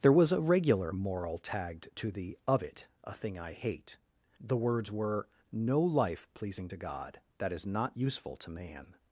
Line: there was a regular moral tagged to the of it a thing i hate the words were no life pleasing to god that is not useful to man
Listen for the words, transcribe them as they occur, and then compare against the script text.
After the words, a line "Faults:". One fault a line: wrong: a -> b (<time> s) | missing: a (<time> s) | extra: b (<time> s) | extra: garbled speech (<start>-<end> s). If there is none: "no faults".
there was a regular moral tagged to the of it a thing i hate the words were no life pleasing to god that is not useful to man
Faults:
no faults